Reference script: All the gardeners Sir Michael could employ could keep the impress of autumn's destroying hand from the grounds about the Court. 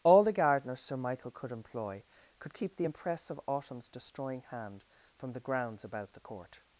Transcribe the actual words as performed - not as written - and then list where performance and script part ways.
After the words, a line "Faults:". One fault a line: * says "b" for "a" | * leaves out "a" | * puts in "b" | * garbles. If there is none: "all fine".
All the gardeners Sir Michael could employ could keep the impress of autumn's destroying hand from the grounds about the Court.
Faults:
all fine